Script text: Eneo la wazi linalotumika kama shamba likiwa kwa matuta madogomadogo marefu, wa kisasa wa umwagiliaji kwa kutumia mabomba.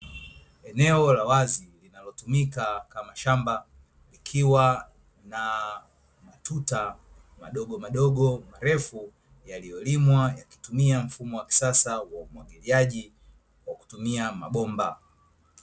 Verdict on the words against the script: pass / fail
fail